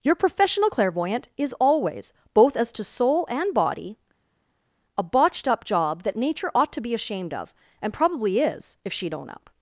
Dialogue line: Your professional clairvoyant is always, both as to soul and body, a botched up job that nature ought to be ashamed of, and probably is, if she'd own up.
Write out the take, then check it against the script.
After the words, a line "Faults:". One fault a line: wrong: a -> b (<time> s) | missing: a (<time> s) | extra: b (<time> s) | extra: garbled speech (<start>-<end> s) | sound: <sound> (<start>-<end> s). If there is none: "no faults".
Your professional clairvoyant is always, both as to soul and body, a botched up job that nature ought to be ashamed of, and probably is, if she'd own up.
Faults:
no faults